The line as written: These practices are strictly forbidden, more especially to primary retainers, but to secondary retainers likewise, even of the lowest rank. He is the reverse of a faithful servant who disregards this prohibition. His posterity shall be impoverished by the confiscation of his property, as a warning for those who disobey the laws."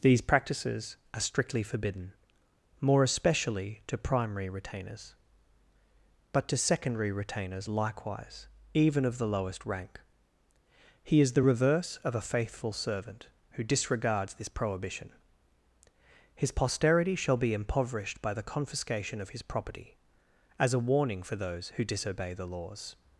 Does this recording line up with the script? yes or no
yes